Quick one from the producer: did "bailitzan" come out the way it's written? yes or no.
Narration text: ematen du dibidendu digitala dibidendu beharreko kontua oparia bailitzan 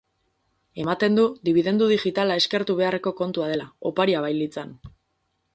yes